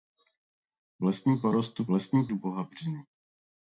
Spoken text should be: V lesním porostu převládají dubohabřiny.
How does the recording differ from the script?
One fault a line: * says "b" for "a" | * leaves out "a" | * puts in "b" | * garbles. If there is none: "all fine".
* says "lesním" for "převládají"